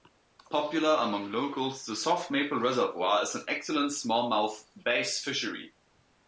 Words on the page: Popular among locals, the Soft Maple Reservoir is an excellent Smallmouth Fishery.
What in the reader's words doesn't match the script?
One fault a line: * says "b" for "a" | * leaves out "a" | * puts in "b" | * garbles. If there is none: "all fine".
* puts in "Bass"